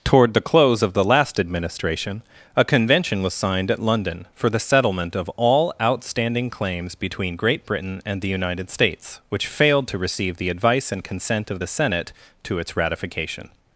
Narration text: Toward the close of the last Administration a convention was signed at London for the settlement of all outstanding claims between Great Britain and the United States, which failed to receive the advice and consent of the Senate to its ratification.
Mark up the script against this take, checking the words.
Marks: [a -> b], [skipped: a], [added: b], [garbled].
Toward the close of the last Administration a convention was signed at London for the settlement of all outstanding claims between Great Britain and the United States, which failed to receive the advice and consent of the Senate to its ratification.